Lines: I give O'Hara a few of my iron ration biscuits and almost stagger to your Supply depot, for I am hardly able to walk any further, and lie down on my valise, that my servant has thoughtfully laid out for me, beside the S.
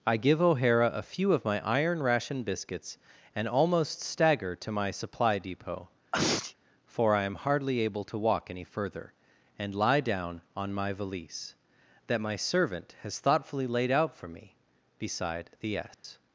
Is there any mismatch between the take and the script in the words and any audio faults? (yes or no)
yes